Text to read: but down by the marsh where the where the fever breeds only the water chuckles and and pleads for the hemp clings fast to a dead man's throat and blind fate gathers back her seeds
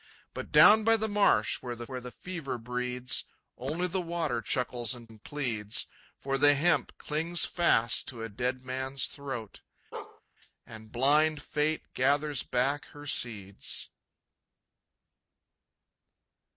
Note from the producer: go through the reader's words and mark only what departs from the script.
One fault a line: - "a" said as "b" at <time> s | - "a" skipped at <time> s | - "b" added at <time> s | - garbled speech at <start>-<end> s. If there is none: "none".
none